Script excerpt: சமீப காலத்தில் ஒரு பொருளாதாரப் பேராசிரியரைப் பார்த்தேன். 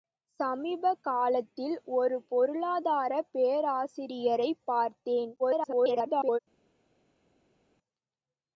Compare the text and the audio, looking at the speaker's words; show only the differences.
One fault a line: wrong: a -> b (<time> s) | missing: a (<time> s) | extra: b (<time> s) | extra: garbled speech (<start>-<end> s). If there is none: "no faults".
extra: garbled speech (5.4-6.4 s)